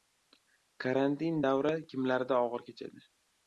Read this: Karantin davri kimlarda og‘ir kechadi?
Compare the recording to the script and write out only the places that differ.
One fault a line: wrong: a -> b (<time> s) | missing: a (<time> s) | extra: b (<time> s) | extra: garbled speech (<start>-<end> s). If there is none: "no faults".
no faults